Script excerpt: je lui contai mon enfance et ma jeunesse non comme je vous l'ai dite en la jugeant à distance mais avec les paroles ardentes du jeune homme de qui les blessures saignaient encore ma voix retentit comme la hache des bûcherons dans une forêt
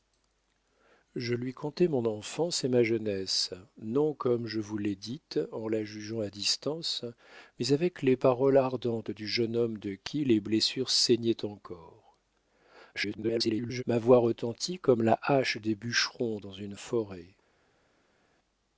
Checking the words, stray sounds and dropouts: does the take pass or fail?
fail